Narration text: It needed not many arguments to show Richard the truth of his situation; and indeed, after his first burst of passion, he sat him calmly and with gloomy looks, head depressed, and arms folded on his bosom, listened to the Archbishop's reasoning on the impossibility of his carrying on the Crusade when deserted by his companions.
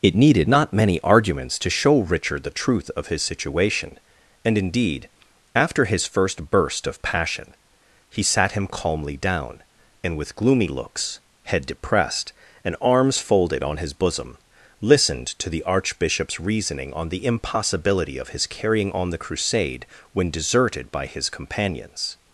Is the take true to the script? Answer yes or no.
no